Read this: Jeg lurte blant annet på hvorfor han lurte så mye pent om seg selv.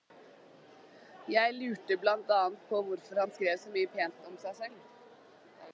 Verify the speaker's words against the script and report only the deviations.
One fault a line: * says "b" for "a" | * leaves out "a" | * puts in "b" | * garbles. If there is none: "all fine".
* says "skrev" for "lurte"